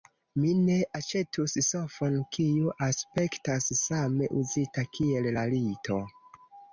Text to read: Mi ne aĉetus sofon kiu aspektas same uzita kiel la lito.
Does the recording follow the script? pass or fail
pass